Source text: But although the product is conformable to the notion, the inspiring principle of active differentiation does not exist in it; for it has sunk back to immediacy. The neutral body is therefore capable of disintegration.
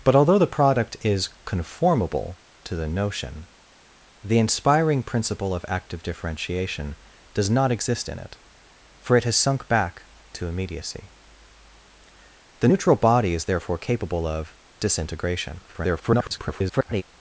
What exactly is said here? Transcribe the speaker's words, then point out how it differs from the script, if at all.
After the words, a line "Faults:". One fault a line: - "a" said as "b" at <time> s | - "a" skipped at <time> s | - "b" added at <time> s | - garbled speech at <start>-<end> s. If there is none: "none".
But although the product is conformable to the notion, the inspiring principle of active differentiation does not exist in it; for it has sunk back to immediacy. The neutral body is therefore capable of disintegration. [garbled]
Faults:
- garbled speech at 15.7-17.0 s